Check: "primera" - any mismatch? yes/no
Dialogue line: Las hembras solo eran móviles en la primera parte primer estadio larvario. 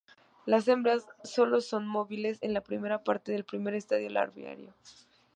no